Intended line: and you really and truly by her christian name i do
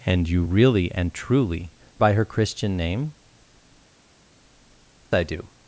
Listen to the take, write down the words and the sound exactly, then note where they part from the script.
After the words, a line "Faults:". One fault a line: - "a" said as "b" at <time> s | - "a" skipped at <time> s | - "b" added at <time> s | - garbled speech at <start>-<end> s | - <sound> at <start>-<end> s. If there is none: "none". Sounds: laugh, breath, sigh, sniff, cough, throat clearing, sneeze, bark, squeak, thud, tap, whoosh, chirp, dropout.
and you really and truly by her christian name i do
Faults:
none